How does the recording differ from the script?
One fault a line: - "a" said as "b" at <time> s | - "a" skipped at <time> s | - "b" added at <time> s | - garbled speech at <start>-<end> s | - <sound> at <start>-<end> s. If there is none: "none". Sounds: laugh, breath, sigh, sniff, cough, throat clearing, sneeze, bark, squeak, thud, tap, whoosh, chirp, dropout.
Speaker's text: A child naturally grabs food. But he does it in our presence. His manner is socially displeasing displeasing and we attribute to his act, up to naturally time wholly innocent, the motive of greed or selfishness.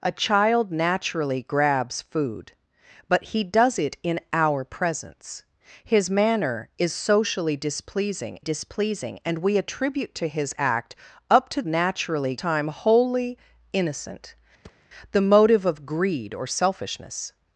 - thud at 14.6-14.9 s